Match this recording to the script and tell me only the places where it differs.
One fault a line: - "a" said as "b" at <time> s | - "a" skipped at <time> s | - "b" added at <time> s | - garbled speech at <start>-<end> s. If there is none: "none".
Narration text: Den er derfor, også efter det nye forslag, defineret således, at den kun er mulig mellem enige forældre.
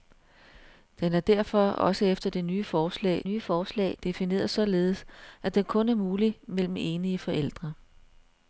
- "nye forslag" added at 3.2 s